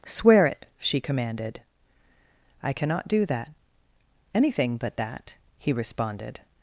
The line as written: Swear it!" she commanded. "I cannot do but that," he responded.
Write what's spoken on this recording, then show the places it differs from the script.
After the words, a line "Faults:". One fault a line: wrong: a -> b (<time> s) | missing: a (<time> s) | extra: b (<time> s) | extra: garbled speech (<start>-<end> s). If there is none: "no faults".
Swear it!" she commanded. "I cannot do that; anything but that," he responded.
Faults:
extra: that anything (3.3 s)